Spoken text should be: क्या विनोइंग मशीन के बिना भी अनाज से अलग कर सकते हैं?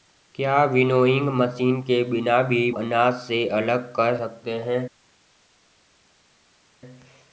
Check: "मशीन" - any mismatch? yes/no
no